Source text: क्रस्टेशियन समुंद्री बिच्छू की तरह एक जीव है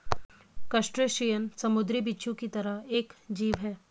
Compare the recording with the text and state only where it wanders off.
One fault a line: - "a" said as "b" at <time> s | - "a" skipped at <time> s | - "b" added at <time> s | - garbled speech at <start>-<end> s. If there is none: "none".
none